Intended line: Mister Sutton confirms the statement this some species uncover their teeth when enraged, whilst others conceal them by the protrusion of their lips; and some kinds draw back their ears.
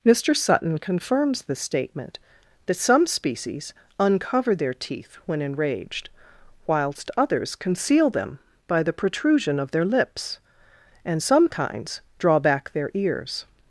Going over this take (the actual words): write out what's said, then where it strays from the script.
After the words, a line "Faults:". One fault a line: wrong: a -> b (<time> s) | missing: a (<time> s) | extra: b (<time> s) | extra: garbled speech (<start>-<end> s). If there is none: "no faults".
Mister Sutton confirms the statement that some species uncover their teeth when enraged, whilst others conceal them by the protrusion of their lips; and some kinds draw back their ears.
Faults:
wrong: this -> that (2.6 s)